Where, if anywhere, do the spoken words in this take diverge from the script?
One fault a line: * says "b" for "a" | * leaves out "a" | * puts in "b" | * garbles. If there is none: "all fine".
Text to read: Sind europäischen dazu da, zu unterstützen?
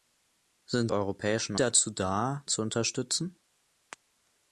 all fine